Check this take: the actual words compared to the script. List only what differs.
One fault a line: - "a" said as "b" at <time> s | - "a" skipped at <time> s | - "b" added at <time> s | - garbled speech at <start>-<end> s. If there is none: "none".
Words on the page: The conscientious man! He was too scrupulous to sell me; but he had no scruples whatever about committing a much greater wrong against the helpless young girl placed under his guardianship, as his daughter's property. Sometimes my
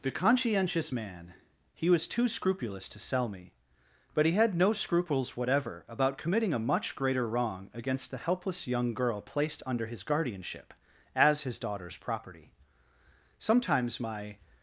none